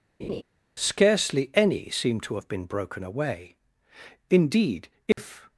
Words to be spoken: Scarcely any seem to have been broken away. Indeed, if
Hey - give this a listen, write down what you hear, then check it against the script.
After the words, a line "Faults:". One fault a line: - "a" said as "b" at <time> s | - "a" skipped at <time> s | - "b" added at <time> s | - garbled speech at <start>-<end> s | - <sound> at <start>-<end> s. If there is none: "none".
Scarcely any seem to have been broken away. Indeed, if
Faults:
- laugh at 0.2-0.4 s
- dropout at 5.1-5.2 s